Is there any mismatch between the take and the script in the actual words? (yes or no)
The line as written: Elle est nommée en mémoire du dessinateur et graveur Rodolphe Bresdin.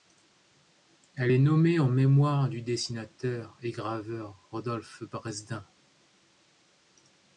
no